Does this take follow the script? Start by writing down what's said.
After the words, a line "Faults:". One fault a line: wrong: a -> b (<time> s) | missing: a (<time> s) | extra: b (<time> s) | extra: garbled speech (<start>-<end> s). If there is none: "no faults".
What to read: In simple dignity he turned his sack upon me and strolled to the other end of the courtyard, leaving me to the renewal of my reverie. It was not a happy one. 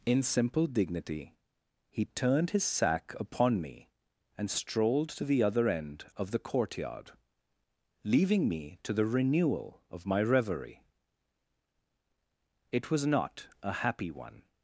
In simple dignity he turned his sack upon me and strolled to the other end of the courtyard, leaving me to the renewal of my reverie. It was not a happy one.
Faults:
no faults